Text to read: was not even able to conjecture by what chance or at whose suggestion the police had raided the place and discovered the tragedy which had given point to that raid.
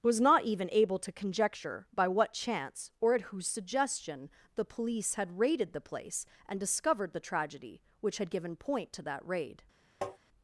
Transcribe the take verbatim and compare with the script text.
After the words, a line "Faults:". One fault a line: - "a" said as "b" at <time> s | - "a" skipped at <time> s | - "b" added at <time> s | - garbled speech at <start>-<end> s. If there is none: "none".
was not even able to conjecture by what chance or at whose suggestion the police had raided the place and discovered the tragedy which had given point to that raid.
Faults:
none